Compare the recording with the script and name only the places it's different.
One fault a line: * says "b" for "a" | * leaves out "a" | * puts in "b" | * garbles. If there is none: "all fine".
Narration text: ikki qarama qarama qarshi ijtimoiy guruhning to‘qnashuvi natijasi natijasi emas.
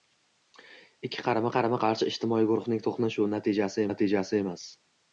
all fine